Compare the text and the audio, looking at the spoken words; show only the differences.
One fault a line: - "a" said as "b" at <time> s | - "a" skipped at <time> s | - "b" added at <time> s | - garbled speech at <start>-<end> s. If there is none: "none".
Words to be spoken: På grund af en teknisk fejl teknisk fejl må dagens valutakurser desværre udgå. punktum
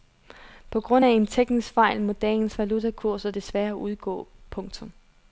- "teknisk fejl" skipped at 2.0 s